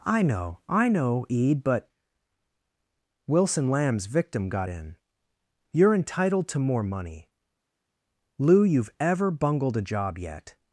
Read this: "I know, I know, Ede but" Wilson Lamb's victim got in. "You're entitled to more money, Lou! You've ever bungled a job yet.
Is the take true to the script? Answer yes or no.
yes